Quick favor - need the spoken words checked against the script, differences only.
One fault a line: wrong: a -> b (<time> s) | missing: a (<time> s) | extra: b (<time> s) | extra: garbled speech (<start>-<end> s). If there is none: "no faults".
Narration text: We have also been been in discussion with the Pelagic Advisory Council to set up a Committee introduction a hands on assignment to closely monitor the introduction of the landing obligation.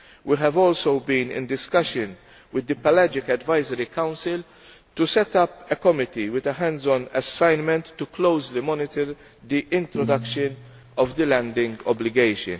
missing: been (1.3 s)
wrong: introduction -> with (6.3 s)